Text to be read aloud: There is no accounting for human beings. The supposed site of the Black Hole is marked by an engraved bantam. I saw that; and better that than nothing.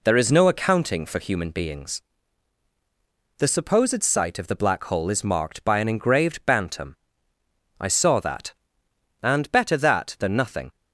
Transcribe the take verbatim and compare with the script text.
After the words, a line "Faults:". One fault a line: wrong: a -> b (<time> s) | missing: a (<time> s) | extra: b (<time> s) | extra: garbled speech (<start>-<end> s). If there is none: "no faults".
There is no accounting for human beings. The supposed site of the Black Hole is marked by an engraved bantam. I saw that; and better that than nothing.
Faults:
no faults